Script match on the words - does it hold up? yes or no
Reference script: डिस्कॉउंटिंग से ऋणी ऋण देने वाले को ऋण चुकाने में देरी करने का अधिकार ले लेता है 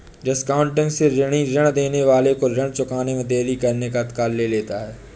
yes